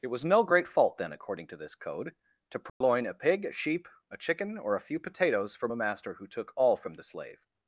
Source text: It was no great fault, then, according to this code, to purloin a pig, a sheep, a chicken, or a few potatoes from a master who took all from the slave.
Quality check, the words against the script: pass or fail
pass